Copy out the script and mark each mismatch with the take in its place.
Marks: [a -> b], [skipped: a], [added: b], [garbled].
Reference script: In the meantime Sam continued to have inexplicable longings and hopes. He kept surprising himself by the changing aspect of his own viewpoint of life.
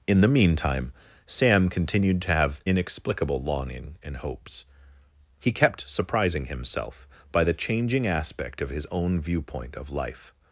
In the meantime Sam continued to have inexplicable [longings -> longing] and hopes. He kept surprising himself by the changing aspect of his own viewpoint of life.